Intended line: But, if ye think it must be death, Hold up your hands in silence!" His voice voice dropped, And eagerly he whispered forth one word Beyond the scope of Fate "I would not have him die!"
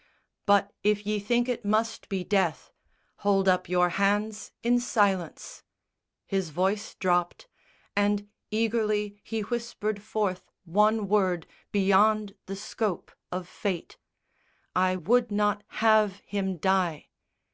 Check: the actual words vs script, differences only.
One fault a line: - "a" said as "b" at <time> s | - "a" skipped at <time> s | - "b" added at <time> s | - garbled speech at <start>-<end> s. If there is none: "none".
- "voice" skipped at 6.9 s